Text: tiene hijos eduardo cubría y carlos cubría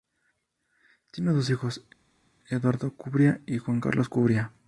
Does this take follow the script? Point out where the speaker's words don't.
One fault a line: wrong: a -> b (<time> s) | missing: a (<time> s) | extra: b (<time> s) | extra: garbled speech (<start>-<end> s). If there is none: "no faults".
extra: dos (1.3 s)
extra: juan (3.6 s)